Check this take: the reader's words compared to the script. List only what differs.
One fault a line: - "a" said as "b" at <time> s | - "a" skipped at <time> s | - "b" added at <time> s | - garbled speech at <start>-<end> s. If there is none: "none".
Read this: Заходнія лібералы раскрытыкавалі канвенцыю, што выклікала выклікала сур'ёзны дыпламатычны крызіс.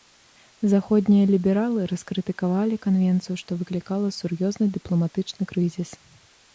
- "выклікала" skipped at 4.1 s